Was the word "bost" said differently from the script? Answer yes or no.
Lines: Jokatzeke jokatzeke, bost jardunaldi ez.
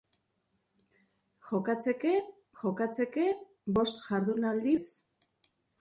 no